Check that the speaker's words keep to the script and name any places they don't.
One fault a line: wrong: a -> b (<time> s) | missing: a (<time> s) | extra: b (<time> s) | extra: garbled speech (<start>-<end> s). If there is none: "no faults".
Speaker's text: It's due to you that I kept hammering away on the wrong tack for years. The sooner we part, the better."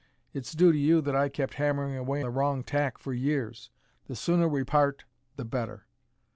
missing: on (2.2 s)